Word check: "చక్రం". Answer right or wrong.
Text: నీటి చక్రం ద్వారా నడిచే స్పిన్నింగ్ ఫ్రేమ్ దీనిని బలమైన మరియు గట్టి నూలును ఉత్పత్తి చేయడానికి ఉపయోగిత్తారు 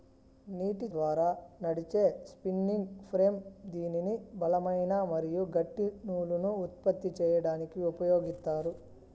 wrong